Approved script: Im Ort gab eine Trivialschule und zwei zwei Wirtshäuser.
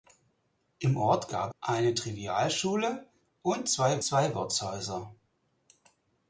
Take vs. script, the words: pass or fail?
pass